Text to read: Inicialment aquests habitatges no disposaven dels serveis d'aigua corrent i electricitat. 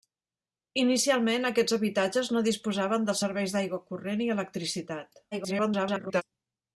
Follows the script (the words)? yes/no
no